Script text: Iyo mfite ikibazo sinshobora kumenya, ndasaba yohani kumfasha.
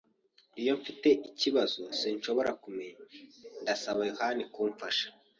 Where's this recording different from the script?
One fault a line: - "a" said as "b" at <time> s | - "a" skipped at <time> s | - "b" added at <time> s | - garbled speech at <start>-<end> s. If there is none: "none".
none